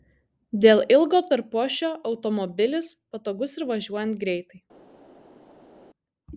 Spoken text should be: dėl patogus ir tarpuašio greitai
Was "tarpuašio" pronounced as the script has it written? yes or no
no